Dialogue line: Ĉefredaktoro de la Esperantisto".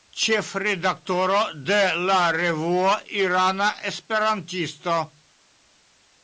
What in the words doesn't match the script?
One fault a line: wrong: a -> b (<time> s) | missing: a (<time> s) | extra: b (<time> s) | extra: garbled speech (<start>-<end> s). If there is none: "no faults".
extra: revuo Irana (2.4 s)